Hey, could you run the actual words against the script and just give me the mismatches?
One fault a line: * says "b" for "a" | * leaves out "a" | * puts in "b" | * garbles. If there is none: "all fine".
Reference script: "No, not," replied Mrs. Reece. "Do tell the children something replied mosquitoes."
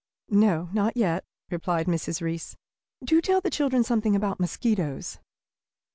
* puts in "yet"
* says "about" for "replied"